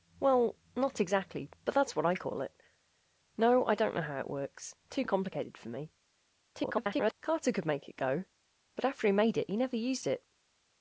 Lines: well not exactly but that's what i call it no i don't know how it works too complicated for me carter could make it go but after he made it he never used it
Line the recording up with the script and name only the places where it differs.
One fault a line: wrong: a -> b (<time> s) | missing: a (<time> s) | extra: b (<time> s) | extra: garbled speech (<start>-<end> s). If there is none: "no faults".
extra: garbled speech (6.5-7.1 s)